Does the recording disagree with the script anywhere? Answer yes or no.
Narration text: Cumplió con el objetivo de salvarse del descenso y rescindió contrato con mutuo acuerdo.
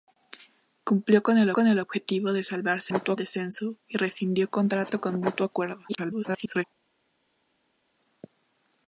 yes